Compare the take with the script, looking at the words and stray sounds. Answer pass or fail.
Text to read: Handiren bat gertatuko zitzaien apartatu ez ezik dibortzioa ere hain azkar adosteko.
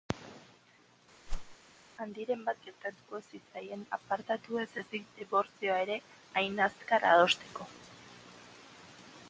fail